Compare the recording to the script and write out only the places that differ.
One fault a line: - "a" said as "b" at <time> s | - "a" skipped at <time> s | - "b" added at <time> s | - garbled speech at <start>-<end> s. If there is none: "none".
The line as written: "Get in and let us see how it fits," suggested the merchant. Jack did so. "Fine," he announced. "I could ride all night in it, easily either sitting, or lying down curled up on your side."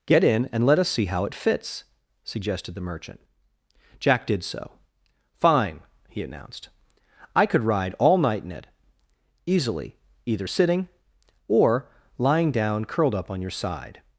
none